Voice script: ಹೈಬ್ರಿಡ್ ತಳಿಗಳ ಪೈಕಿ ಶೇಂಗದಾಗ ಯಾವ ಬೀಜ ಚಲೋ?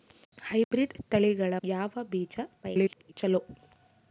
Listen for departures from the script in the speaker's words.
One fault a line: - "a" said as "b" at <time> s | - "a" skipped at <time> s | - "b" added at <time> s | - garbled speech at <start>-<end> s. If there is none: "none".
- "ಪೈಕಿ ಶೇಂಗದಾಗ" skipped at 1.5 s
- garbled speech at 2.6-3.1 s